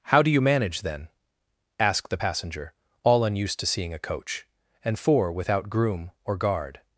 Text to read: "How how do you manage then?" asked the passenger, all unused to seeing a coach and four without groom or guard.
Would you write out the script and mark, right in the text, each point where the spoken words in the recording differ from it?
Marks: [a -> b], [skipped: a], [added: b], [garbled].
"How [skipped: how] do you manage then?" asked the passenger, all unused to seeing a coach and four without groom or guard.